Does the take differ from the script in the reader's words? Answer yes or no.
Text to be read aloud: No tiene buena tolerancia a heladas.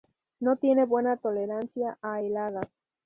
no